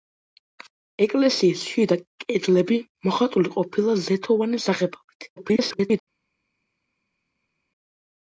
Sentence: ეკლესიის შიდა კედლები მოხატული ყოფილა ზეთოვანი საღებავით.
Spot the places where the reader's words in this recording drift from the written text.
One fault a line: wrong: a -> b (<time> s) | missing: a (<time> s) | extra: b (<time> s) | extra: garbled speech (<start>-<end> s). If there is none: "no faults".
extra: garbled speech (5.4-6.0 s)